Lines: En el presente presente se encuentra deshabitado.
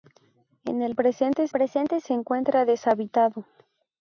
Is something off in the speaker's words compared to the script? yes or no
no